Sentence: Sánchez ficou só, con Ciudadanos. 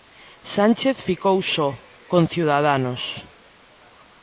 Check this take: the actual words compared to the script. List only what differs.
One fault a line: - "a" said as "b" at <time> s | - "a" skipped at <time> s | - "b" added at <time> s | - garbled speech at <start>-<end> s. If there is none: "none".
none